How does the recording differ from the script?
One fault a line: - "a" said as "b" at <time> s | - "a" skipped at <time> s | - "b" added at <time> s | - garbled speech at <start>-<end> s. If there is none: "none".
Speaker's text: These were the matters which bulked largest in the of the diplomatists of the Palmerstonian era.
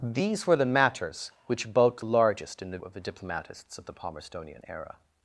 none